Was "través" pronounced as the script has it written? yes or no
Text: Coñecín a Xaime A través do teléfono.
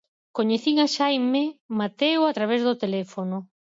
yes